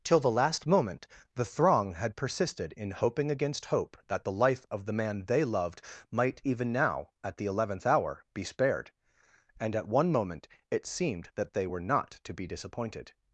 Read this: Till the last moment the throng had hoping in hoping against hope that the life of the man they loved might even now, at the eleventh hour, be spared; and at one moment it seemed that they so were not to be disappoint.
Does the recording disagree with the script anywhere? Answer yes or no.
yes